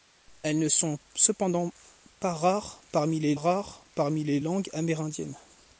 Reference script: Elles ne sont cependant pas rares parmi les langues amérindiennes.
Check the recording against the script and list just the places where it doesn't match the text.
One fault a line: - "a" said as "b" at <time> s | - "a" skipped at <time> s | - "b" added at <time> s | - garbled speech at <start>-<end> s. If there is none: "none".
- "rares parmi les" added at 3.3 s